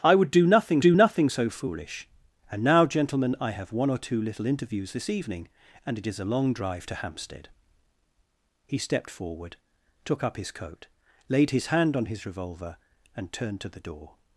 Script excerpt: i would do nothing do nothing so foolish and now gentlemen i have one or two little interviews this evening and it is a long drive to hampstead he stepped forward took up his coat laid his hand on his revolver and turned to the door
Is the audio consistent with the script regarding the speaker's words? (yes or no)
yes